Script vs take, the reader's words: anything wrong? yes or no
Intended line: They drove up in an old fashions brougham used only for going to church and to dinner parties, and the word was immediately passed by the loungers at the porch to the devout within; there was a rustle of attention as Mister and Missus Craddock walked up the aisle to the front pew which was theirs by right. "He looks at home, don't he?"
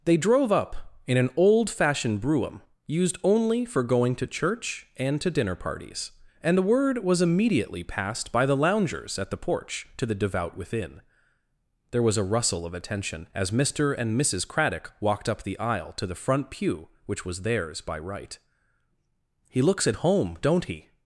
yes